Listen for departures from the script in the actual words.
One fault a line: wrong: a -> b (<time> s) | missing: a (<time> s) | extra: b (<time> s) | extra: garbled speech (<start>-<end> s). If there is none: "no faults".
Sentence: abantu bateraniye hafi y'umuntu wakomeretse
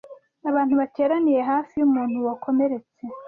no faults